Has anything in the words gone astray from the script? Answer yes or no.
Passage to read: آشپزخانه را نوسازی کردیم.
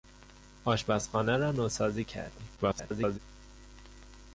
yes